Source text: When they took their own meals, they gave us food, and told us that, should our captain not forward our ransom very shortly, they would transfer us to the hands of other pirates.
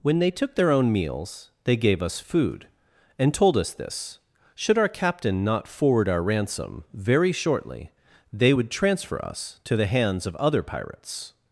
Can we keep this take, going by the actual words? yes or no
no